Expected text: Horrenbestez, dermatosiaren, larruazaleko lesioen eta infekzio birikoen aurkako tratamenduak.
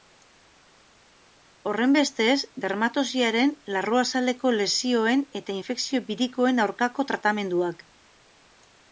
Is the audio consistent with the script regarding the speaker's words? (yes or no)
yes